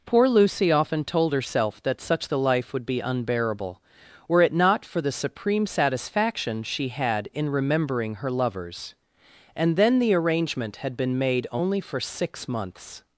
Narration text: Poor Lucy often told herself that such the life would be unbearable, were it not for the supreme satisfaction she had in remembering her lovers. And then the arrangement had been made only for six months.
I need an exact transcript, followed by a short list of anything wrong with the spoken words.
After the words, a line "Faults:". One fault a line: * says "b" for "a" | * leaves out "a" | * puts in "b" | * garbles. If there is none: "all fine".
Poor Lucy often told herself that such the life would be unbearable, were it not for the supreme satisfaction she had in remembering her lovers. And then the arrangement had been made only for six months.
Faults:
all fine